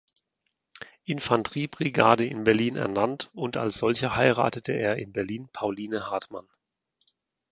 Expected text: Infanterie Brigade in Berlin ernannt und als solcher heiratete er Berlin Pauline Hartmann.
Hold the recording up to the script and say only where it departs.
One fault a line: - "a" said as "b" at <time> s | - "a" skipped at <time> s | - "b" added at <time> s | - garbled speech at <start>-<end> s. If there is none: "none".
- "in" added at 5.0 s